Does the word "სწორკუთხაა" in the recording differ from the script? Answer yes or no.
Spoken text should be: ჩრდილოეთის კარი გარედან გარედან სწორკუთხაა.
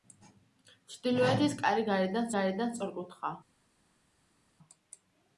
no